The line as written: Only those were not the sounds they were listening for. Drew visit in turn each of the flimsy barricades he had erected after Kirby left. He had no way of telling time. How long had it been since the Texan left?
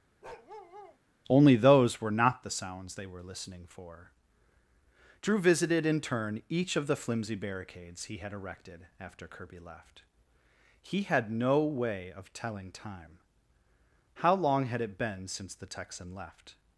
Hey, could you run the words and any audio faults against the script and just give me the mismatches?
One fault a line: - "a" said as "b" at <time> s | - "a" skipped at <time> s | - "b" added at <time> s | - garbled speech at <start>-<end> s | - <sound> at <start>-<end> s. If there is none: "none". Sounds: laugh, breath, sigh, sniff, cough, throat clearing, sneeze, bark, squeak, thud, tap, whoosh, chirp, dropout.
- bark at 0.2-1.0 s
- "visit" said as "visited" at 5.4 s